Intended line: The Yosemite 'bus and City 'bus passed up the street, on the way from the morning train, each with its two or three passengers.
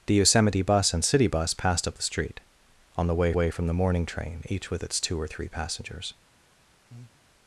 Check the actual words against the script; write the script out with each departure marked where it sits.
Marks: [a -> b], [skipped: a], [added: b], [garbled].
The Yosemite 'bus and City 'bus passed up the street, on the way [added: way] from the morning train, each with its two or three passengers.